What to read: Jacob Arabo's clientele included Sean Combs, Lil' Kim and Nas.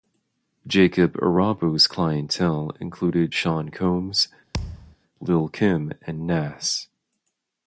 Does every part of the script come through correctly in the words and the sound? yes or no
no